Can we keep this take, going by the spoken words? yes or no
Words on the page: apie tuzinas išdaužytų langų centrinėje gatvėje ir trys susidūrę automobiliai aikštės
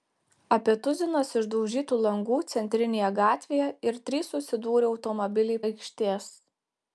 yes